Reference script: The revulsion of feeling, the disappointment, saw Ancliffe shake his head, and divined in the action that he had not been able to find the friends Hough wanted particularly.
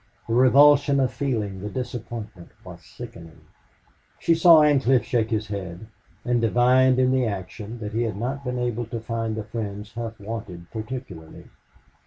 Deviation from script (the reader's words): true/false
true